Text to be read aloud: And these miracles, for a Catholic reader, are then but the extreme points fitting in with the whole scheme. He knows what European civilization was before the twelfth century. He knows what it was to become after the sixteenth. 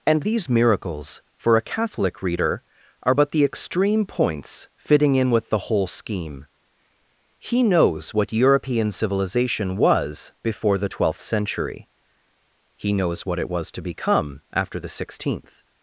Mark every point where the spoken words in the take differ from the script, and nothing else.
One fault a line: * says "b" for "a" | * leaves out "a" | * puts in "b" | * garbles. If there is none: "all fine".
* leaves out "then"